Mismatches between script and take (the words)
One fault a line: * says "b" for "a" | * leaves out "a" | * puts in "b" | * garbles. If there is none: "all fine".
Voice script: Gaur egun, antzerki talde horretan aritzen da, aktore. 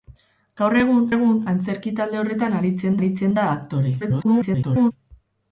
* puts in "egun"
* puts in "aritzen"
* garbles